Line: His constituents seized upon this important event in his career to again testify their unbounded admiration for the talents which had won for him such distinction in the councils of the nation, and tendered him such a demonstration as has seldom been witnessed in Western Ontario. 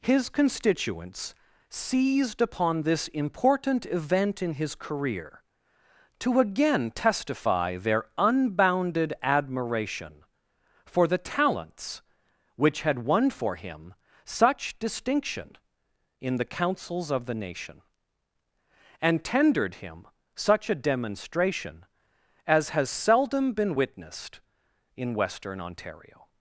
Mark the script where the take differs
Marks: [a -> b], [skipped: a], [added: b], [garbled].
His constituents seized upon this important event in his career to again testify their unbounded admiration for the talents which had won for him such distinction in the councils of the nation, and tendered him such a demonstration as has seldom been witnessed in Western Ontario.